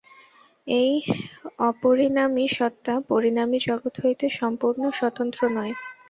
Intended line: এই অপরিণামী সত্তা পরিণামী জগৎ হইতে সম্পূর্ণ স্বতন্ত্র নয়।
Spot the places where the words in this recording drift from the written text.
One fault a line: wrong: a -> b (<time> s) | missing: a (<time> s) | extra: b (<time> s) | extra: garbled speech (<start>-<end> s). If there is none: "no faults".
no faults